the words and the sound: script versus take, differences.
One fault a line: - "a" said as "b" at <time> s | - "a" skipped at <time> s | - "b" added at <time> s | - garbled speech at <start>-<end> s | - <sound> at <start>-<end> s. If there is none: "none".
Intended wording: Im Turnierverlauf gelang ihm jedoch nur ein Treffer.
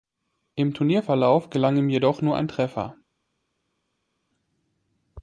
none